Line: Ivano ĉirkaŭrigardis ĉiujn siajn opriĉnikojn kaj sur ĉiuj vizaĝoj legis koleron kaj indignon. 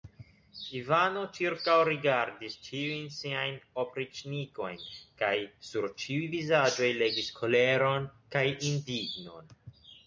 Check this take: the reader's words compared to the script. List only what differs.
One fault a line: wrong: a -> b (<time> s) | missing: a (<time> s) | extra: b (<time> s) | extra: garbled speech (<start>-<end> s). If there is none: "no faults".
no faults